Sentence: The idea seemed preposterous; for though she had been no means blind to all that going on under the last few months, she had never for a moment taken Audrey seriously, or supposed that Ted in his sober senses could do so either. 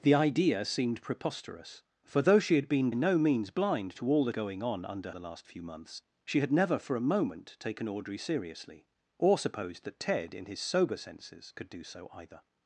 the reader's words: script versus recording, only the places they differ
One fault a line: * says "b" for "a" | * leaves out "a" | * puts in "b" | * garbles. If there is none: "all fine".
all fine